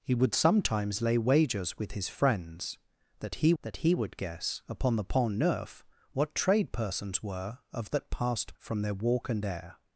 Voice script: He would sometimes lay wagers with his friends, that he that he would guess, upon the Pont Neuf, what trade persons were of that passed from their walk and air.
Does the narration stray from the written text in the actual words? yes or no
no